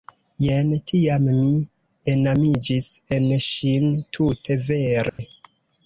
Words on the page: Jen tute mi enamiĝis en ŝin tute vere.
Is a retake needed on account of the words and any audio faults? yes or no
yes